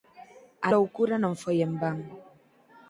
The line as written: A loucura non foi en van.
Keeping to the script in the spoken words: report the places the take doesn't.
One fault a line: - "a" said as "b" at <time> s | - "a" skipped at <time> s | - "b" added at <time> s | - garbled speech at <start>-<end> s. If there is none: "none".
none